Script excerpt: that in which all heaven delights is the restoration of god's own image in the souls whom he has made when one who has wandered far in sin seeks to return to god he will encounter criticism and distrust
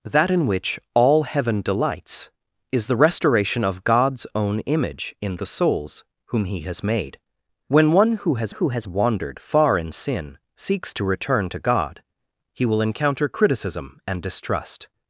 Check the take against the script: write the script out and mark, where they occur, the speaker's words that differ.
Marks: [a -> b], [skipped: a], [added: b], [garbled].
that in which all heaven delights is the restoration of god's own image in the souls whom he has made when one who has [added: who has] wandered far in sin seeks to return to god he will encounter criticism and distrust